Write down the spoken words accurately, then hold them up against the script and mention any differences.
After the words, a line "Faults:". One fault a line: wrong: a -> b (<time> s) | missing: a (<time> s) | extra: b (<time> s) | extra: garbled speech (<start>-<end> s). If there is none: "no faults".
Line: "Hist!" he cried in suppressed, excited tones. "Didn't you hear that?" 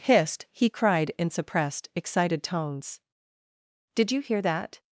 "Hist!" he cried in suppressed, excited tones. "Did you hear that?"
Faults:
wrong: Didn't -> Did (3.9 s)